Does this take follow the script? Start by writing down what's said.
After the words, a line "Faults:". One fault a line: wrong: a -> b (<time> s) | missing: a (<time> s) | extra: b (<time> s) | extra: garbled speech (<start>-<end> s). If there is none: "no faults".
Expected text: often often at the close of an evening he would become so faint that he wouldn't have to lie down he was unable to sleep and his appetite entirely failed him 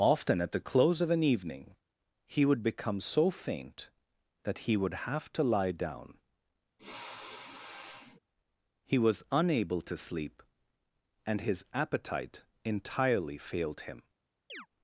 often at the close of an evening he would become so faint that he would have to lie down he was unable to sleep and his appetite entirely failed him
Faults:
missing: often (0.4 s)
wrong: wouldn't -> would (4.7 s)